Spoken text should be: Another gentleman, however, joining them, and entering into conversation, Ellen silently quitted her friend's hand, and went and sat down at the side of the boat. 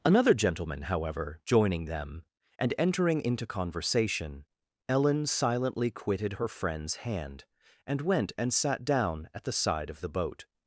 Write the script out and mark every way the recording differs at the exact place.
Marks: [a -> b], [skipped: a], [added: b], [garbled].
Another gentleman, however, joining them, and entering into conversation, Ellen silently quitted her friend's hand, and went and sat down at the side of the boat.